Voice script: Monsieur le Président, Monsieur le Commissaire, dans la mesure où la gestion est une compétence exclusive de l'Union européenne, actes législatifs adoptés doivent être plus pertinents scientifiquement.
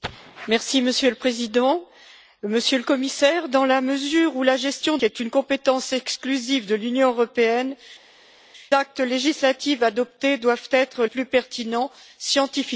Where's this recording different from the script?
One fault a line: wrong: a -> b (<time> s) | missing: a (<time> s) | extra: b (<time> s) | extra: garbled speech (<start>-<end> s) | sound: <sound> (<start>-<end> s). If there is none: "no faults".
no faults